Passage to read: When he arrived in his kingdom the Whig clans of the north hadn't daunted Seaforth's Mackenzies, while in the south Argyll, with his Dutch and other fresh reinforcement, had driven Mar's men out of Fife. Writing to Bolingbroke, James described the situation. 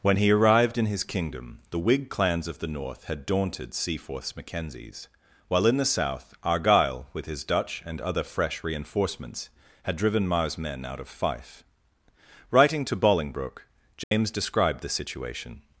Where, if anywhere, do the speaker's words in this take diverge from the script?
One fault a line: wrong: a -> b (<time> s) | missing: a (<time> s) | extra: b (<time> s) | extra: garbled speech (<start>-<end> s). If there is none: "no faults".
wrong: hadn't -> had (3.0 s)
wrong: reinforcement -> reinforcements (8.6 s)